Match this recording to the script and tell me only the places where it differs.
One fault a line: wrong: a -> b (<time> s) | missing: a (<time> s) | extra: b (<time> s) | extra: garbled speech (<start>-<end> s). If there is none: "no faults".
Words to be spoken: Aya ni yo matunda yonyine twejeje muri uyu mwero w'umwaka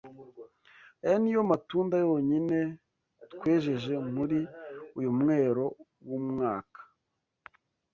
no faults